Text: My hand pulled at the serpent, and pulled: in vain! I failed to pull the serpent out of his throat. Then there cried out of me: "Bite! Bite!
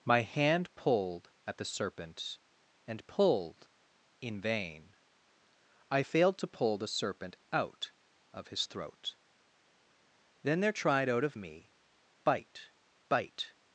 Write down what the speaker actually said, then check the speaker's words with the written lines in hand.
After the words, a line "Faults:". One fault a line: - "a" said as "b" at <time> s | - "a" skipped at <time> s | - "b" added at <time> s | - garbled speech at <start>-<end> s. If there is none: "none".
My hand pulled at the serpent, and pulled: in vain! I failed to pull the serpent out of his throat. Then there tried out of me: "Bite! Bite!
Faults:
- "cried" said as "tried" at 10.7 s